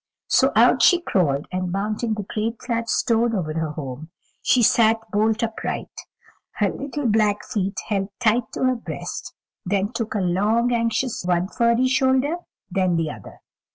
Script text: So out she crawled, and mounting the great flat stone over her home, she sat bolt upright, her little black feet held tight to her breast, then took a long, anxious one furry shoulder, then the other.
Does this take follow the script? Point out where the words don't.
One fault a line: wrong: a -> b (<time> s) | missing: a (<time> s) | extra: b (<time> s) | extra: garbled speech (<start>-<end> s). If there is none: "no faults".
no faults